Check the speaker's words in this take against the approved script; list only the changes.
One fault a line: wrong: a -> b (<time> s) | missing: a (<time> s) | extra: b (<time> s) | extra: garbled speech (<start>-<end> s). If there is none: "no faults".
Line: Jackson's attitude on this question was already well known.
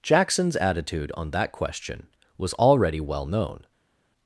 wrong: this -> that (1.3 s)